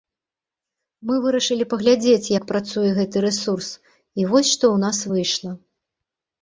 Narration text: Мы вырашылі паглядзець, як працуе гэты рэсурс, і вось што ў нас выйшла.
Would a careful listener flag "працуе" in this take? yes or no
no